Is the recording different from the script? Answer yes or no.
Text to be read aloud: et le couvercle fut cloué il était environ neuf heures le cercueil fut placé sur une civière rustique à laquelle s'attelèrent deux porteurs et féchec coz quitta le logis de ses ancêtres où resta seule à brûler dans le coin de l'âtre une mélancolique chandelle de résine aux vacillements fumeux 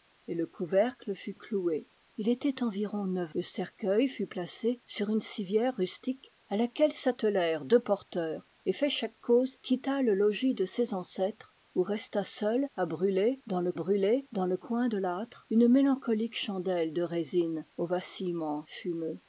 yes